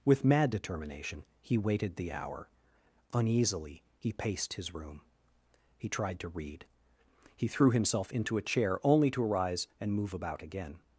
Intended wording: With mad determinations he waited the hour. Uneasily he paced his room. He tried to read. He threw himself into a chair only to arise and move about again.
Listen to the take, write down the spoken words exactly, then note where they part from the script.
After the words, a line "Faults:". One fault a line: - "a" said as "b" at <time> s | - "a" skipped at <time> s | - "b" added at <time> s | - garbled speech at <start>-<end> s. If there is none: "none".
With mad determination he waited the hour. Uneasily he paced his room. He tried to read. He threw himself into a chair only to arise and move about again.
Faults:
- "determinations" said as "determination" at 0.5 s